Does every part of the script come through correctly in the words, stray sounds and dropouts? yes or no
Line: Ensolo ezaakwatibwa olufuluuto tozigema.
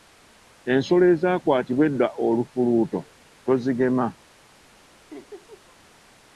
no